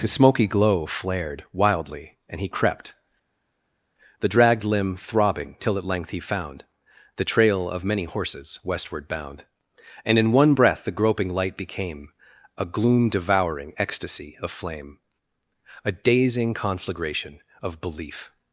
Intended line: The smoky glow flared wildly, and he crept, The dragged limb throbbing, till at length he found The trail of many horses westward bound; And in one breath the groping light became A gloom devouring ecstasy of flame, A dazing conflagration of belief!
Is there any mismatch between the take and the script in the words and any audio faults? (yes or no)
yes